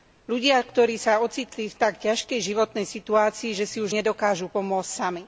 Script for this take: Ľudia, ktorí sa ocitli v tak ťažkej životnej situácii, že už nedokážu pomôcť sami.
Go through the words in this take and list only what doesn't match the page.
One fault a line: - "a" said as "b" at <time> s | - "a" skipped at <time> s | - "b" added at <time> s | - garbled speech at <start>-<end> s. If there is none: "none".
- "si" added at 3.7 s